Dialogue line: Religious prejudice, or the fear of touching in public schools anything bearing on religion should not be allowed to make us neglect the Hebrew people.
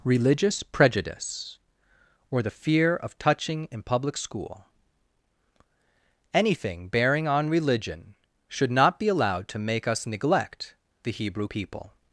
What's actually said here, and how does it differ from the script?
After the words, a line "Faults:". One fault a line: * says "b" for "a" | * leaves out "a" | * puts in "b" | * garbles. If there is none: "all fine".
Religious prejudice, or the fear of touching in public school anything bearing on religion should not be allowed to make us neglect the Hebrew people.
Faults:
* says "school" for "schools"